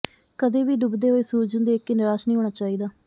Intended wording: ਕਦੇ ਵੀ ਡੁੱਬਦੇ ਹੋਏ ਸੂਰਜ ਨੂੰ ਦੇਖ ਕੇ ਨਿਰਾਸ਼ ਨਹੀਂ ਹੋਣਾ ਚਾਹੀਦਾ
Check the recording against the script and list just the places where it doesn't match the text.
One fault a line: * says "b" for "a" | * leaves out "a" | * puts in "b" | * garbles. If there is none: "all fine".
all fine